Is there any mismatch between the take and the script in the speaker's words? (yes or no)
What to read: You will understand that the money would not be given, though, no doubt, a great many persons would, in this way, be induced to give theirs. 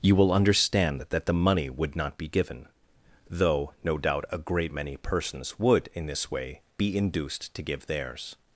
no